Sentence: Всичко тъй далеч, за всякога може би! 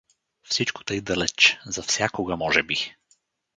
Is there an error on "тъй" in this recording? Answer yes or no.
no